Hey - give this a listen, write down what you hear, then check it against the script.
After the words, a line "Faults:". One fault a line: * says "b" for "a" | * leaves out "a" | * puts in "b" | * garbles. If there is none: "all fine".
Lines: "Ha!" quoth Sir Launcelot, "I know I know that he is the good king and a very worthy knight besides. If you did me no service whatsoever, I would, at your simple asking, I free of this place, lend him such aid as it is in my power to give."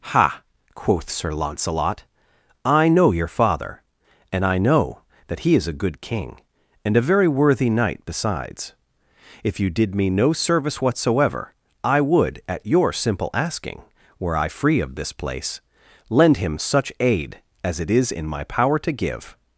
"Ha!" quoth Sir Launcelot, "I know your father, and I know that he is a good king and a very worthy knight besides. If you did me no service whatsoever, I would, at your simple asking, were I free of this place, lend him such aid as it is in my power to give."
Faults:
* puts in "your father and"
* says "a" for "the"
* puts in "were"